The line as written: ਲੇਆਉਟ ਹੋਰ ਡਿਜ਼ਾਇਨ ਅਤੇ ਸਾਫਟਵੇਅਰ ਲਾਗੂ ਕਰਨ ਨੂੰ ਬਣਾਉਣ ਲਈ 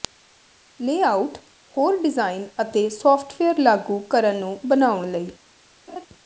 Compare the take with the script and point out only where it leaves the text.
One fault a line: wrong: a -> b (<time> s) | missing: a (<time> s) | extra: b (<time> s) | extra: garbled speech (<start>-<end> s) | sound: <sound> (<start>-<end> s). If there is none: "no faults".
sound: laugh (5.9-6.1 s)